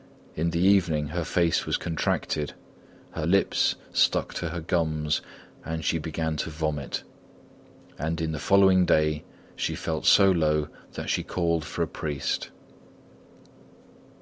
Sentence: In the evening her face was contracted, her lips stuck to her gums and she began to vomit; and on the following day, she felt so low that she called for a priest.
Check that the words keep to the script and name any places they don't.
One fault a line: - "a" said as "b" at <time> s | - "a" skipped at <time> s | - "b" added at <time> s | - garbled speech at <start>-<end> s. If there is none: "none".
none